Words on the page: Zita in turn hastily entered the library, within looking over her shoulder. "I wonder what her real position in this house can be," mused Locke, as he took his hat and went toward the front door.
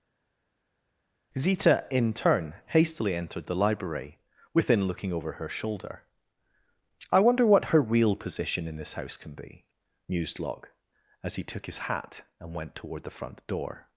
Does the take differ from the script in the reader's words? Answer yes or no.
no